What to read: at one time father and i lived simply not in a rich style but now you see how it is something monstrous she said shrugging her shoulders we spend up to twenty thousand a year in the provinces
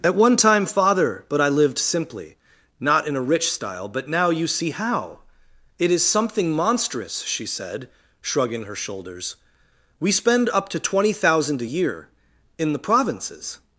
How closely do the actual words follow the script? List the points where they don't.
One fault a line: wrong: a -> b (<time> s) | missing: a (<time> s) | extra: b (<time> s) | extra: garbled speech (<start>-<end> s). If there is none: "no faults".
wrong: and -> but (1.3 s)